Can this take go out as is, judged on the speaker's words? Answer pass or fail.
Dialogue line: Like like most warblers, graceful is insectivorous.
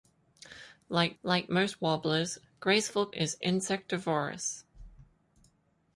pass